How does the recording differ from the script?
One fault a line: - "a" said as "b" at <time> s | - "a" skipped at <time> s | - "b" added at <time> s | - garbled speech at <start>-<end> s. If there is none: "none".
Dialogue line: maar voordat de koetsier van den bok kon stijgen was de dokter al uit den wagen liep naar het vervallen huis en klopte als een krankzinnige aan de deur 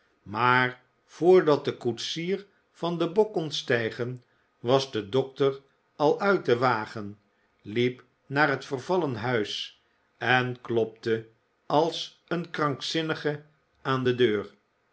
none